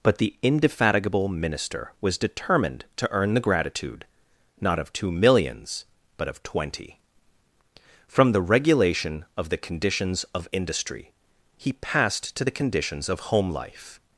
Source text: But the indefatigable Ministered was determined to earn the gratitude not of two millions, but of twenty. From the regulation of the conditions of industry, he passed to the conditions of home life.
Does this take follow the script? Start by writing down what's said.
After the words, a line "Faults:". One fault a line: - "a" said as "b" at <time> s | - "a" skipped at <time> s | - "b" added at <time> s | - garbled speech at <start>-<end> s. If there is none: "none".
But the indefatigable Minister was determined to earn the gratitude not of two millions, but of twenty. From the regulation of the conditions of industry, he passed to the conditions of home life.
Faults:
- "Ministered" said as "Minister" at 1.3 s